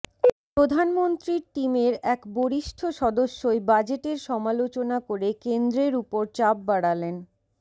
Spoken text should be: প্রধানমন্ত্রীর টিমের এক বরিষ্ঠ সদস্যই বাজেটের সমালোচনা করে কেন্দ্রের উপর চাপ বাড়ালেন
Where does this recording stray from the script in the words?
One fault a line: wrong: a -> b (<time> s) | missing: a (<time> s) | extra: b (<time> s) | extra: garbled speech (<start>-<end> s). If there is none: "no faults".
no faults